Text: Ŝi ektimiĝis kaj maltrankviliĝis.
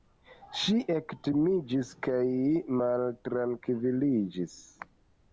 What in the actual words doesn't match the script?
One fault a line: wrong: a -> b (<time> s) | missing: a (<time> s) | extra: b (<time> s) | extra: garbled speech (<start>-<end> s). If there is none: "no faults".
no faults